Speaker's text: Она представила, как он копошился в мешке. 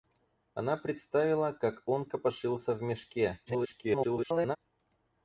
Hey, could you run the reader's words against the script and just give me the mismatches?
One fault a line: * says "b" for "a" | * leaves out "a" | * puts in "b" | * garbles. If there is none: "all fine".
* garbles